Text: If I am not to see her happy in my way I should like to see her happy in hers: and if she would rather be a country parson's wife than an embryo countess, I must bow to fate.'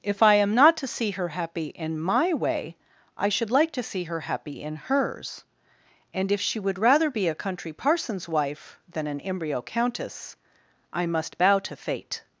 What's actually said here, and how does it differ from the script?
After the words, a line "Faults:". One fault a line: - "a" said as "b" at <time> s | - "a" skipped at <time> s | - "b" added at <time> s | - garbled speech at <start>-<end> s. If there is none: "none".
If I am not to see her happy in my way I should like to see her happy in hers: and if she would rather be a country parson's wife than an embryo countess, I must bow to fate.'
Faults:
none